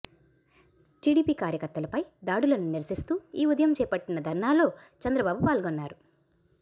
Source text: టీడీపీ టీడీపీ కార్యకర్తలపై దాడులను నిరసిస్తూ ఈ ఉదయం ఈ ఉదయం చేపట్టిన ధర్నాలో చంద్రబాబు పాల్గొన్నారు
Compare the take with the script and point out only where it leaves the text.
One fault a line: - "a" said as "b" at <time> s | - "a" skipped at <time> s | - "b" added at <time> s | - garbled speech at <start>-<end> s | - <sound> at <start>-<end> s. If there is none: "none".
- "టీడీపీ" skipped at 1.3 s
- "ఈ ఉదయం" skipped at 3.7 s